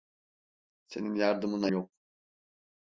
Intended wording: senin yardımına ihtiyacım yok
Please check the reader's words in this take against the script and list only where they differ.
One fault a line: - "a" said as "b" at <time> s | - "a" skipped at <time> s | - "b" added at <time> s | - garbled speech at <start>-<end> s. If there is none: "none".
- "ihtiyacım" skipped at 1.7 s